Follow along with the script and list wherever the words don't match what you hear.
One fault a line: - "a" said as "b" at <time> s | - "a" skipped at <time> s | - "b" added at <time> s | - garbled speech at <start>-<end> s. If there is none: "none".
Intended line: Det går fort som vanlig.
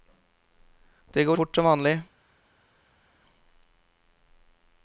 none